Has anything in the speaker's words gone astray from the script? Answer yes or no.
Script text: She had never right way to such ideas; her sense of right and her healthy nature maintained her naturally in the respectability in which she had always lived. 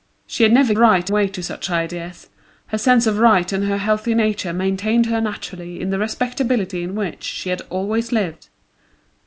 no